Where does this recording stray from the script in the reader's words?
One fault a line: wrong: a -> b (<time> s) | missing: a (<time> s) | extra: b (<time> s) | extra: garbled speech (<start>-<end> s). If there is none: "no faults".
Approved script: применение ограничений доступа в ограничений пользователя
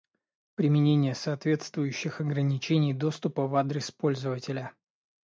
extra: соответствующих (1.1 s)
wrong: ограничений -> адрес (3.6 s)